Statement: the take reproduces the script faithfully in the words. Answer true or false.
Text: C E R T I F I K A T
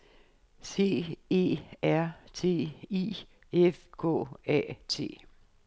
false